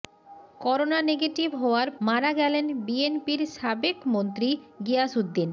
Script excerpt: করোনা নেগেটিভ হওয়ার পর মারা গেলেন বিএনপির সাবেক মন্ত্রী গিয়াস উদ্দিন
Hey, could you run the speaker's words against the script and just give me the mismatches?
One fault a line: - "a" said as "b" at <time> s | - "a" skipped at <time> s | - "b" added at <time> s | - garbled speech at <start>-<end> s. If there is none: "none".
- "পর" skipped at 1.9 s